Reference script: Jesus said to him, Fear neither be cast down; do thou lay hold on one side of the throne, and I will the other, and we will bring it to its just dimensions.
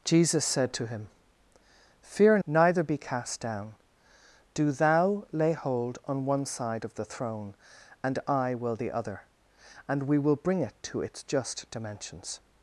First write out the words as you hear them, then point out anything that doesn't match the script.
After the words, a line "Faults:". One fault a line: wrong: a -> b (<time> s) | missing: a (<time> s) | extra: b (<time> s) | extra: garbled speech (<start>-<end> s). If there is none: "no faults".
Jesus said to him, Fear neither be cast down; do thou lay hold on one side of the throne, and I will the other, and we will bring it to its just dimensions.
Faults:
no faults